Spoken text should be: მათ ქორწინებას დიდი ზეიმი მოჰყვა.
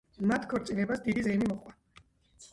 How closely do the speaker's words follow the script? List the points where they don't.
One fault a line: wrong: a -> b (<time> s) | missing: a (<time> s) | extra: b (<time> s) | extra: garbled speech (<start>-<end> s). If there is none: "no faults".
no faults